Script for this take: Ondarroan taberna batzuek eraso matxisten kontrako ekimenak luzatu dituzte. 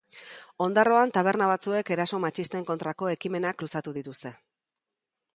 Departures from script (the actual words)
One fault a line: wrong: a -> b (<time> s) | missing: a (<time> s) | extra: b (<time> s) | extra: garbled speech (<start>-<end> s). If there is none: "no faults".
no faults